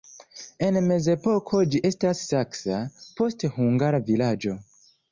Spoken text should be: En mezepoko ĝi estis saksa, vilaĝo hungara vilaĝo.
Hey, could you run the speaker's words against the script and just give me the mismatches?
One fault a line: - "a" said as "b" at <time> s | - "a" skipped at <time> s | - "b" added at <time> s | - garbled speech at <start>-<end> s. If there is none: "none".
- "vilaĝo" said as "poste" at 3.2 s